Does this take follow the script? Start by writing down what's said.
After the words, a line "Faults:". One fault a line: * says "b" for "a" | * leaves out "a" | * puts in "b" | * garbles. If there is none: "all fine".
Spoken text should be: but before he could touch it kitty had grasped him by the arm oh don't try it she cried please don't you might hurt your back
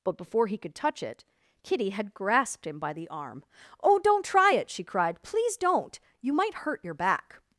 but before he could touch it kitty had grasped him by the arm oh don't try it she cried please don't you might hurt your back
Faults:
all fine